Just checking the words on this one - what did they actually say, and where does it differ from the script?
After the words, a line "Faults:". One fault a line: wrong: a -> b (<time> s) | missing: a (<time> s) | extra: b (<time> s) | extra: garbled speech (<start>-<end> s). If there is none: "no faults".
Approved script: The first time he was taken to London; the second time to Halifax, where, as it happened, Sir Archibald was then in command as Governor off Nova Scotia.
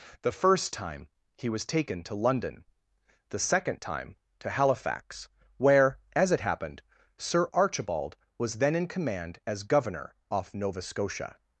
The first time he was taken to London; the second time to Halifax, where, as it happened, Sir Archibald was then in command as Governor off Nova Scotia.
Faults:
no faults